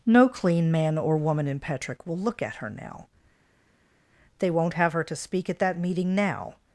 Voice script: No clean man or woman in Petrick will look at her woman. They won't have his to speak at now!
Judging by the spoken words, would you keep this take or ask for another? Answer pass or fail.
fail